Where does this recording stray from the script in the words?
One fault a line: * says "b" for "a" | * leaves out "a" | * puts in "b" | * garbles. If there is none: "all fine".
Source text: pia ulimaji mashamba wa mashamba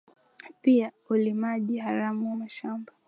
* says "haramu" for "mashamba"